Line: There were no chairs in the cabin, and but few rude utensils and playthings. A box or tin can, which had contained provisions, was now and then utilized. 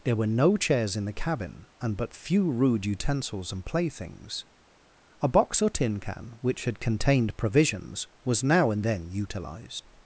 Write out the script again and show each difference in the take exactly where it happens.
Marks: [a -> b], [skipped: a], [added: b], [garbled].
There were no chairs in the cabin, and but few rude utensils and playthings. A box or tin can, which had contained provisions, was now and then utilized.